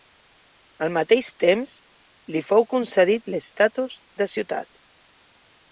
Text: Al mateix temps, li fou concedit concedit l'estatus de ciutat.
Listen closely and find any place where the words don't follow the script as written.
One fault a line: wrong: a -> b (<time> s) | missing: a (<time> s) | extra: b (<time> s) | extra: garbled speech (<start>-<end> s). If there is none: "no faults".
missing: concedit (3.3 s)